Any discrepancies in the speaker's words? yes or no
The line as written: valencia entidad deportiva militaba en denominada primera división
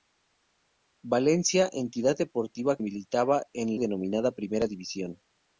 no